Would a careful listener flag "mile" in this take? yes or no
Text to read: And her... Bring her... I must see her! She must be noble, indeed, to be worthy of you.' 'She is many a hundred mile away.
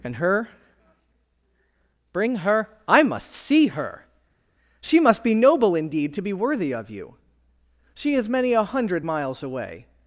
yes